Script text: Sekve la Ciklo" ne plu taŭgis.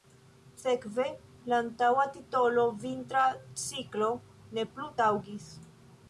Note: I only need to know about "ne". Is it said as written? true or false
true